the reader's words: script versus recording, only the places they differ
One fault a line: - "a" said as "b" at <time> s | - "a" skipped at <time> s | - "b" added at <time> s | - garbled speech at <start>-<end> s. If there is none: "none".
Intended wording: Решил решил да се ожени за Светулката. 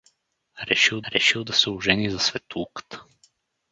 none